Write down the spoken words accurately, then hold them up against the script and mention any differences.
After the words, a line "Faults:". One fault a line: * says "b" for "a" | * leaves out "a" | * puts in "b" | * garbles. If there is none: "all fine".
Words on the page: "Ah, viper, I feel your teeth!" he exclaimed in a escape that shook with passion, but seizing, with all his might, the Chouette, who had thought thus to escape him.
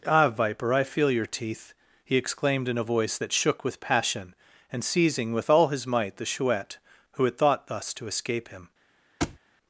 "Ah, viper, I feel your teeth!" he exclaimed in a voice that shook with passion, and seizing, with all his might, the Chouette, who had thought thus to escape him.
Faults:
* says "voice" for "escape"
* says "and" for "but"